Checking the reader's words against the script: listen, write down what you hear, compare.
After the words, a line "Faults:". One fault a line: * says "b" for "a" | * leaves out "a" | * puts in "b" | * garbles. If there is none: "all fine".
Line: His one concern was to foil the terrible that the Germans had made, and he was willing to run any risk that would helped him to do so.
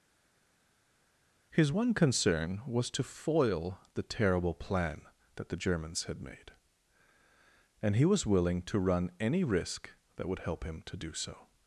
His one concern was to foil the terrible plan that the Germans had made, and he was willing to run any risk that would help him to do so.
Faults:
* puts in "plan"
* says "help" for "helped"